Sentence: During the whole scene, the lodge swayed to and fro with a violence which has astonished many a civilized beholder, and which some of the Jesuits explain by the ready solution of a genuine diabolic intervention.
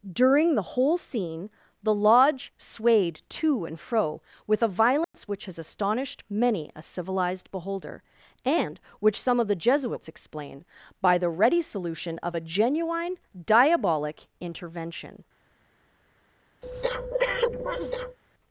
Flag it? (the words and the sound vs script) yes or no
yes